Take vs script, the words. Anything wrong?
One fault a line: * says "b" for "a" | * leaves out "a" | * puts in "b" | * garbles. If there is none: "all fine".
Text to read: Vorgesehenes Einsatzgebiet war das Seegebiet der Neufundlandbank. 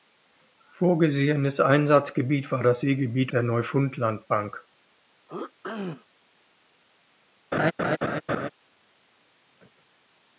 all fine